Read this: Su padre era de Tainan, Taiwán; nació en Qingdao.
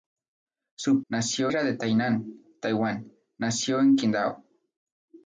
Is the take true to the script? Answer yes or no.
no